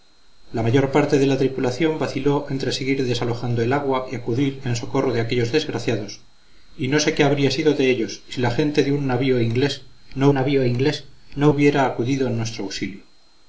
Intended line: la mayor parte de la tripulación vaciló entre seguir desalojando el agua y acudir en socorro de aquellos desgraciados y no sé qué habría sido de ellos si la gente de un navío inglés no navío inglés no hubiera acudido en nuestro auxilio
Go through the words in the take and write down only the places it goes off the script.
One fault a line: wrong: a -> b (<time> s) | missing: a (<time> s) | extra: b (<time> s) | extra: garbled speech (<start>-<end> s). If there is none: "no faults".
no faults